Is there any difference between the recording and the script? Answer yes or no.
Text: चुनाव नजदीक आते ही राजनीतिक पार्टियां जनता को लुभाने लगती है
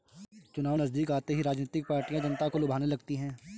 no